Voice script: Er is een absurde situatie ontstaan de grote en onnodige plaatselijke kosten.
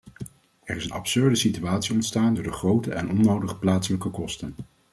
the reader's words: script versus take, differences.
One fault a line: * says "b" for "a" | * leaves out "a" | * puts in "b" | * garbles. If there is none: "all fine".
* puts in "door"